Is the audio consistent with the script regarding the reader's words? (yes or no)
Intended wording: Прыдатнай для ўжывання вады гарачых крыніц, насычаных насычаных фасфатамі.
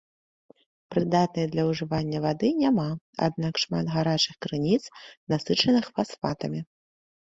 no